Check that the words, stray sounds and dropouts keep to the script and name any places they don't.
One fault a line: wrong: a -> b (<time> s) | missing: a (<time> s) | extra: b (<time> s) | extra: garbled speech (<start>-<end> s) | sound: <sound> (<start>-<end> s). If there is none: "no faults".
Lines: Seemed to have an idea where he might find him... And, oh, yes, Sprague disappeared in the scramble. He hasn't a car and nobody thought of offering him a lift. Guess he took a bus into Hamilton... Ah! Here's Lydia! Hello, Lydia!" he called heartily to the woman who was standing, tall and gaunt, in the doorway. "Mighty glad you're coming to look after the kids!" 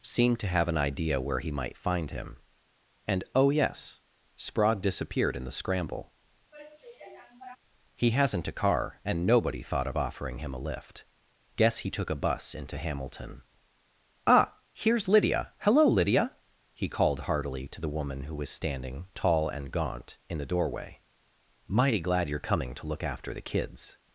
sound: sigh (6.5-7.6 s)